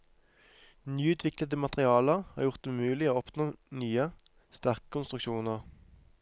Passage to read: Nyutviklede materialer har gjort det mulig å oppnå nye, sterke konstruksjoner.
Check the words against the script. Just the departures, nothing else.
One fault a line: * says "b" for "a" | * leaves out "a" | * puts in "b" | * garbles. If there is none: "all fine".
all fine